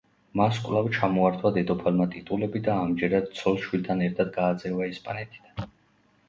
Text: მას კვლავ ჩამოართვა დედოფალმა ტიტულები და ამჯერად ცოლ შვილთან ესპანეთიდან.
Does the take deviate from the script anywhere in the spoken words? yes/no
yes